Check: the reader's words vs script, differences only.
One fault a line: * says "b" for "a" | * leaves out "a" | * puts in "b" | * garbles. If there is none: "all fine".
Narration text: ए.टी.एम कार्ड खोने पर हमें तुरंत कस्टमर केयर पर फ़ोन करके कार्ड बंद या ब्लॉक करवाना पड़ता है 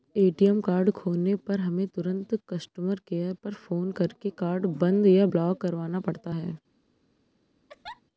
all fine